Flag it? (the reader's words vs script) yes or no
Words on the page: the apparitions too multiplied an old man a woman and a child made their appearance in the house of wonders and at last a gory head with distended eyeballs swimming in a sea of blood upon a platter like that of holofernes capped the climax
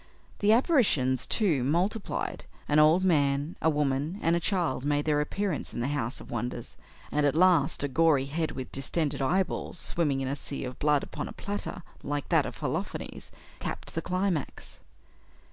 no